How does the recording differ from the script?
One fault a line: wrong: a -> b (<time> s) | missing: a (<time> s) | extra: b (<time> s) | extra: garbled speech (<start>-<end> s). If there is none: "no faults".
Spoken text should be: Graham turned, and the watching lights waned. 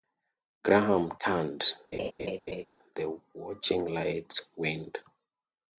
missing: and (1.7 s)